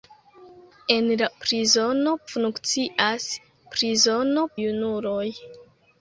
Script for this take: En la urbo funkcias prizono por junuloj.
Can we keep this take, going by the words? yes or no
no